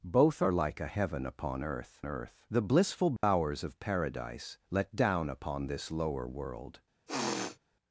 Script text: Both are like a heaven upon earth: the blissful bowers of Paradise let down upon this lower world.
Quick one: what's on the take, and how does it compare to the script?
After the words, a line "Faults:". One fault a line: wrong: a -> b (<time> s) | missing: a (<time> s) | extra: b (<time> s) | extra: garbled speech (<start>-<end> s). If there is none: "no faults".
Both are like a heaven upon earth earth: the blissful bowers of Paradise let down upon this lower world.
Faults:
extra: earth (2.1 s)